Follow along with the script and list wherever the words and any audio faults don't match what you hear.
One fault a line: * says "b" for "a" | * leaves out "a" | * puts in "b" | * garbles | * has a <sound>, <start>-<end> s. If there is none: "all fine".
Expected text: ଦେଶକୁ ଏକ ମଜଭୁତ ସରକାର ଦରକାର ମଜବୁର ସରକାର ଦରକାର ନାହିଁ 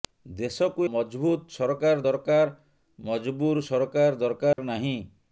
* leaves out "ଏକ"
* has a dropout, 4.5-4.6 s